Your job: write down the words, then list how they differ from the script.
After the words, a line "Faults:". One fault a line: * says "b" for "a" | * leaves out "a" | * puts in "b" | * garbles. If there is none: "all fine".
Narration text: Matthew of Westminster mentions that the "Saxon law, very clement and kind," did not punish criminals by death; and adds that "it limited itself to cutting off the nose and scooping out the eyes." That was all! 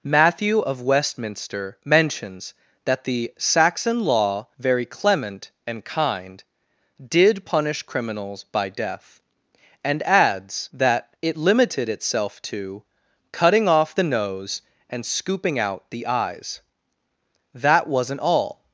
Matthew of Westminster mentions that the "Saxon law, very clement and kind," did punish criminals by death; and adds that "it limited itself to cutting off the nose and scooping out the eyes." That wasn't all!
Faults:
* leaves out "not"
* says "wasn't" for "was"